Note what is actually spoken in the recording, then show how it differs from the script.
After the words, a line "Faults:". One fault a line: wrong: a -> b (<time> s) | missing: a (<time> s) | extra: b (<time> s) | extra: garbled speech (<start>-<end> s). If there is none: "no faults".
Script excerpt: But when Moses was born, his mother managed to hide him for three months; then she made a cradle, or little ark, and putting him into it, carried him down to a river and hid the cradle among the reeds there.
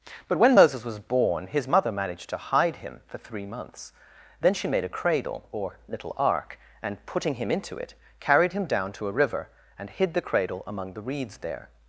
But when Moses was born, his mother managed to hide him for three months; then she made a cradle, or little ark, and putting him into it, carried him down to a river and hid the cradle among the reeds there.
Faults:
no faults